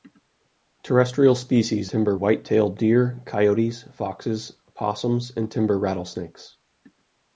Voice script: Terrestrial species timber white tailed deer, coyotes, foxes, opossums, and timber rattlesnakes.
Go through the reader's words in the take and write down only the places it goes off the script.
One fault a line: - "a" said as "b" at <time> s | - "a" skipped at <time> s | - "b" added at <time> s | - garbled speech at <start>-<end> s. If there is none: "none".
none